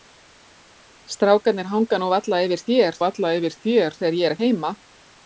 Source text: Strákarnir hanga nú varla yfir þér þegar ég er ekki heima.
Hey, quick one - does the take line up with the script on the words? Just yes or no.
no